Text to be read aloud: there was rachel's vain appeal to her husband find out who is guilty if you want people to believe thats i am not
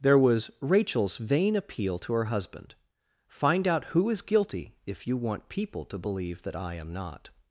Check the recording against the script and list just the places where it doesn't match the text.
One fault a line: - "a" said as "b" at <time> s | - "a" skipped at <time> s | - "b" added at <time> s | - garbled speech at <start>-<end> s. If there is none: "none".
- "thats" said as "that" at 6.4 s